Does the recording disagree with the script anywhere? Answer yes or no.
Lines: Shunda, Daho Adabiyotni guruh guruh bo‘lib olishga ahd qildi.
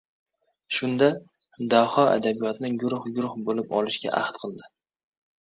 no